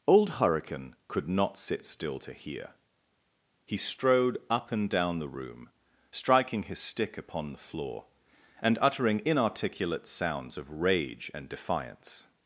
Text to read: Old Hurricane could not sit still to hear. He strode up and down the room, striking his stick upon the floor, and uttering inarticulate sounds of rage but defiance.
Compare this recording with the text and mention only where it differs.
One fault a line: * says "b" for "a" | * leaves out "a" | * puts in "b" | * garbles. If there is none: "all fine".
* says "and" for "but"